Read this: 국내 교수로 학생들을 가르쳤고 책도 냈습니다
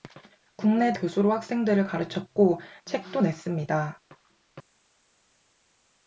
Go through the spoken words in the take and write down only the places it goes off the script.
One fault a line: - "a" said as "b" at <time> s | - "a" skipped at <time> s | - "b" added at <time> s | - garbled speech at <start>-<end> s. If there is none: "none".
none